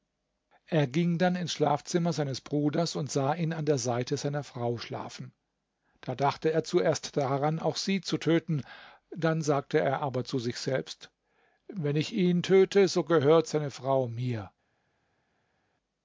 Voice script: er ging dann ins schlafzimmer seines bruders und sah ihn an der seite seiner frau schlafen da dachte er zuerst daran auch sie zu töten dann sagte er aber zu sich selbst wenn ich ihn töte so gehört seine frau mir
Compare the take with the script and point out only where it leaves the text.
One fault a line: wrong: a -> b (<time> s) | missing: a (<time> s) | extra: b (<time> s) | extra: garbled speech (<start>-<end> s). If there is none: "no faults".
no faults